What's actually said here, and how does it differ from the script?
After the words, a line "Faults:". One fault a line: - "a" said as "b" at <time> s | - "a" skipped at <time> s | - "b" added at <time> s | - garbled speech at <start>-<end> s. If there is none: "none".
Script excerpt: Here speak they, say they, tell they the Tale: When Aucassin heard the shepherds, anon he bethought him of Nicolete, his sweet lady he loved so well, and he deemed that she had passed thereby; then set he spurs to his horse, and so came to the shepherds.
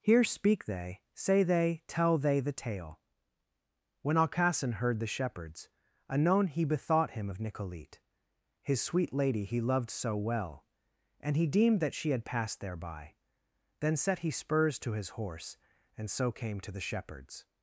Here speak they, say they, tell they the Tale: When Aucassin heard the shepherds, anon he bethought him of Nicolete, his sweet lady he loved so well, and he deemed that she had passed thereby; then set he spurs to his horse, and so came to the shepherds.
Faults:
none